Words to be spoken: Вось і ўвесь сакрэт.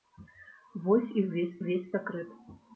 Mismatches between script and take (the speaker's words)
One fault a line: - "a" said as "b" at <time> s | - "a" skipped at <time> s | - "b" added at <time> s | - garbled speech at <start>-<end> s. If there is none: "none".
- "ўвесь" added at 1.6 s